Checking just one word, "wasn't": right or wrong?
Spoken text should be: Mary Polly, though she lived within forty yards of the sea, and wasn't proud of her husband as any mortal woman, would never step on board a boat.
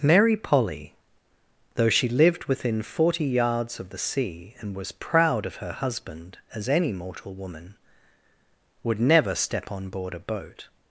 wrong